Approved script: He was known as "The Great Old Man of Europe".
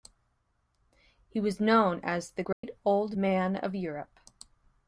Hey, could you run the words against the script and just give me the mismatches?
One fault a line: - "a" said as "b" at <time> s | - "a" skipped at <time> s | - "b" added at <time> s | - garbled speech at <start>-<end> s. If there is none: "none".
none